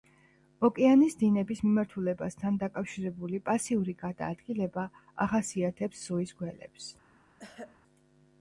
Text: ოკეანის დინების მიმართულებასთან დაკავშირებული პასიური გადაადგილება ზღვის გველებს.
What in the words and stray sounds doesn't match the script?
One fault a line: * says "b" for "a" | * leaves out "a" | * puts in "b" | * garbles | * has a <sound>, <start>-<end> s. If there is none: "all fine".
* puts in "ახასიათებს"
* has a throat clearing, 7.4-7.8 s